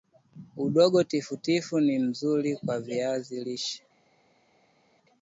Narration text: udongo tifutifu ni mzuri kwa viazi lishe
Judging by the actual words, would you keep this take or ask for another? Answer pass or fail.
pass